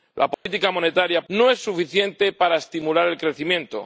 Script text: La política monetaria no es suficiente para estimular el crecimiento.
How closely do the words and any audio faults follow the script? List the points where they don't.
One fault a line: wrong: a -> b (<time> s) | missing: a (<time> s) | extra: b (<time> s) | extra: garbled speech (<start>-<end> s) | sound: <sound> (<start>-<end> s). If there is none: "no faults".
sound: dropout (0.3-0.5 s)